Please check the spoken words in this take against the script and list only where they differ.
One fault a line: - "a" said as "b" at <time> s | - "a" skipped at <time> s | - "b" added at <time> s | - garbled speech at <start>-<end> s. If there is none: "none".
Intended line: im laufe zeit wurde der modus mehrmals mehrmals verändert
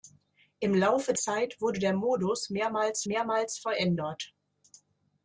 none